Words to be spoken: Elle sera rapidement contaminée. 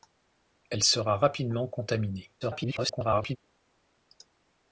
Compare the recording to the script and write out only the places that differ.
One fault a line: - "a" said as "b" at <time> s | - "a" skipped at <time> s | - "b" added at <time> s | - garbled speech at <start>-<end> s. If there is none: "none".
- garbled speech at 2.4-3.4 s